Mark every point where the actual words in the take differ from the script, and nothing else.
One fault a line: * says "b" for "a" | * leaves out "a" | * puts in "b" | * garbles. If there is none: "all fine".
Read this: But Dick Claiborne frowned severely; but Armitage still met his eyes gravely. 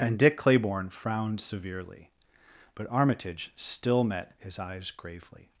* says "And" for "But"